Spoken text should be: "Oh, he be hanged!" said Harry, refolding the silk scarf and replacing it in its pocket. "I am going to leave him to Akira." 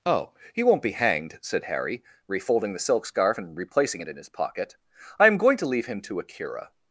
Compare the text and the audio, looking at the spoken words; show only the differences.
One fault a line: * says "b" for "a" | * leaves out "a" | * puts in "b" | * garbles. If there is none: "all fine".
* puts in "won't"
* says "his" for "its"